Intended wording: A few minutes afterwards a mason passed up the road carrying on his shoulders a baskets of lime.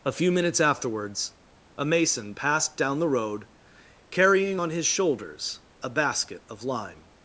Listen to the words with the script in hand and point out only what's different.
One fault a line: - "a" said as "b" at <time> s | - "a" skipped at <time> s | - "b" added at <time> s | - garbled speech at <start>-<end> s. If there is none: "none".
- "up" said as "down" at 2.8 s
- "baskets" said as "basket" at 5.9 s